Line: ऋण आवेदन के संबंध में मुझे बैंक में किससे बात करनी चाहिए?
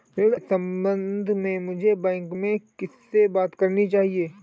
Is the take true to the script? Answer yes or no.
no